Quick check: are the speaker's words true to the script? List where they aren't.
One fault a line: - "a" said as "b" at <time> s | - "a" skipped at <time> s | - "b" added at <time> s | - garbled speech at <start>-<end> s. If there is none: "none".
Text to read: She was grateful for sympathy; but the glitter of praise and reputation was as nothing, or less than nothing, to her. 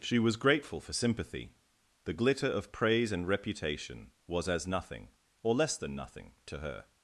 - "but" skipped at 1.5 s